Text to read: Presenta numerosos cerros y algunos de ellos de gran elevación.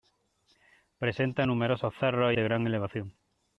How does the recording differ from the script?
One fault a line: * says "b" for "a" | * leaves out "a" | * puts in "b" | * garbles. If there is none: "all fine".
* leaves out "algunos de ellos"